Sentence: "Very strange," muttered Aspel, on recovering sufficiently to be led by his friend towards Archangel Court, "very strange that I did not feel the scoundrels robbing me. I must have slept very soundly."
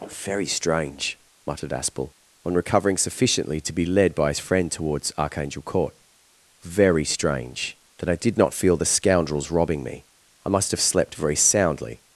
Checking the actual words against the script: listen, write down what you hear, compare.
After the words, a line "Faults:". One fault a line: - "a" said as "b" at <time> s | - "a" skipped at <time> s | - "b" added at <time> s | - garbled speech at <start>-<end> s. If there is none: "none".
"Very strange," muttered Aspel, on recovering sufficiently to be led by his friend towards Archangel Court, "very strange that I did not feel the scoundrels robbing me. I must have slept very soundly."
Faults:
none